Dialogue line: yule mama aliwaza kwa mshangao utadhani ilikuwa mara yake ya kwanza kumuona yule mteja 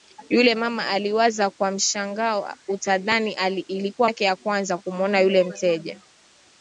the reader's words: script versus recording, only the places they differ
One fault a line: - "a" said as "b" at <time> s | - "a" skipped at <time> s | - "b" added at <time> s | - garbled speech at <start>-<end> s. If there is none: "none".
- "mara" skipped at 4.1 s